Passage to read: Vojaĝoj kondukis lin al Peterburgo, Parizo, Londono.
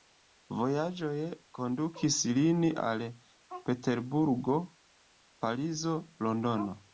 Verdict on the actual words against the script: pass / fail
pass